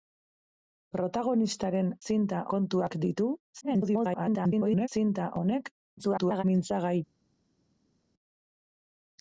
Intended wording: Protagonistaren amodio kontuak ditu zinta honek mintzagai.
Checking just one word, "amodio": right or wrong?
wrong